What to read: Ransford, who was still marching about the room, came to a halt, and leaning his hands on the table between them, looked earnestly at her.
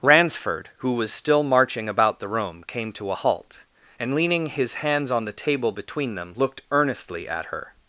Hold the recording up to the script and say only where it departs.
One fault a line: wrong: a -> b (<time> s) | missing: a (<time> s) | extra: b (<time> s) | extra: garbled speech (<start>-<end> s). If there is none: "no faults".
no faults